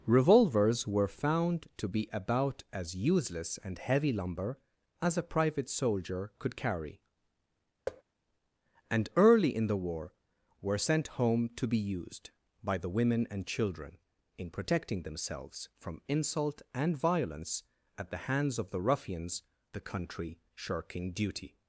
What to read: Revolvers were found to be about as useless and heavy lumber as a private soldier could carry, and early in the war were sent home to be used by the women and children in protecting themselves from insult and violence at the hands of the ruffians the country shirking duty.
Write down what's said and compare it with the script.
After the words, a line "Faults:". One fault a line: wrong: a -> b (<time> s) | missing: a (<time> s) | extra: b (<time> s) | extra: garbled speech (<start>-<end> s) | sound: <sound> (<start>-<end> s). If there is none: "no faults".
Revolvers were found to be about as useless and heavy lumber as a private soldier could carry, and early in the war were sent home to be used by the women and children in protecting themselves from insult and violence at the hands of the ruffians the country shirking duty.
Faults:
sound: thud (7.9-8.0 s)